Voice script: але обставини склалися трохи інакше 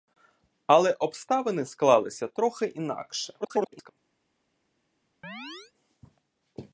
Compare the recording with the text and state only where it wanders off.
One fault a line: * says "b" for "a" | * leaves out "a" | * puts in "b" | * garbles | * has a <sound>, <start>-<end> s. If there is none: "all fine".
* garbles
* has a chirp, 5.2-5.7 s